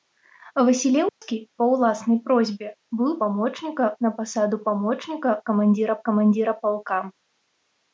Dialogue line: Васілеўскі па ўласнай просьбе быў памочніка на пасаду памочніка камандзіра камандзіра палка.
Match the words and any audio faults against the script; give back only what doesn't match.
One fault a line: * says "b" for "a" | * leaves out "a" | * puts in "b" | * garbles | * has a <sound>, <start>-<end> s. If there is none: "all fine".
* has a dropout, 1.1-1.2 s